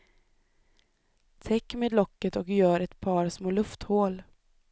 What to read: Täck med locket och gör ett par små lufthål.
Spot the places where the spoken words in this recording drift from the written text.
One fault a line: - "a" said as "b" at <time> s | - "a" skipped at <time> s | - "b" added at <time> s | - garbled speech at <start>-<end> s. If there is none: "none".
none